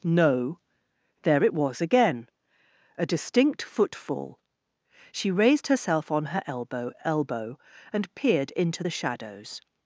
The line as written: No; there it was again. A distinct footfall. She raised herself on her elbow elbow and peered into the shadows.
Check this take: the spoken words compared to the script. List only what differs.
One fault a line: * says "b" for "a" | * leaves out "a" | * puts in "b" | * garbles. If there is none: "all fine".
all fine